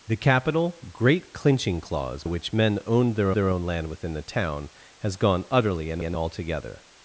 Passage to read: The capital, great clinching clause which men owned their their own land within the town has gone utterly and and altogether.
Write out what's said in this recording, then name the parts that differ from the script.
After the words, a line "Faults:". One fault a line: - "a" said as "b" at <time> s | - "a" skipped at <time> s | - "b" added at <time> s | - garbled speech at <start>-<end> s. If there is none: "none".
The capital, great clinching clause which men owned their their own land within the town has gone utterly and and altogether.
Faults:
none